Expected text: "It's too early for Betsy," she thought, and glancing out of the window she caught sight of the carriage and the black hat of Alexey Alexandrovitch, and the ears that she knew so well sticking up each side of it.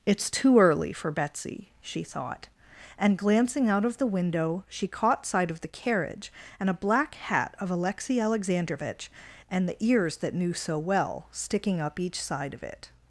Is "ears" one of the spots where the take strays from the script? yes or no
no